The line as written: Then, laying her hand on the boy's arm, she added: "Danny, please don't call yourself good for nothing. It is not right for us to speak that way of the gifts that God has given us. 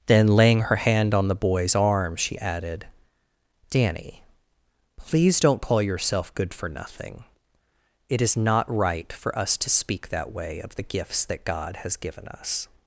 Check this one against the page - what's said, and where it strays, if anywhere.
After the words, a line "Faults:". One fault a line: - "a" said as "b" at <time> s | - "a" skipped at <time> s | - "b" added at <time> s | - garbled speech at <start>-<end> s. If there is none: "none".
Then, laying her hand on the boy's arm, she added: "Danny, please don't call yourself good for nothing. It is not right for us to speak that way of the gifts that God has given us.
Faults:
none